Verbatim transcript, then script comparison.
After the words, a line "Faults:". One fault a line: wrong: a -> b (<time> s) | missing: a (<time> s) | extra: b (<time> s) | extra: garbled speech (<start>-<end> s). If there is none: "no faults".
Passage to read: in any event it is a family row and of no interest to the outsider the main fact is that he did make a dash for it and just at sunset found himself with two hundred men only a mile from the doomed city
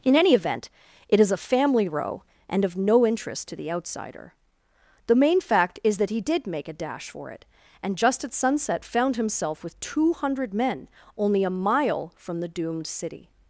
in any event it is a family row and of no interest to the outsider the main fact is that he did make a dash for it and just at sunset found himself with two hundred men only a mile from the doomed city
Faults:
no faults